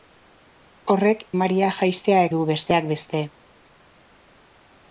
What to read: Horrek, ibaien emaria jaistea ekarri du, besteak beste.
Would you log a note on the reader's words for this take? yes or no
yes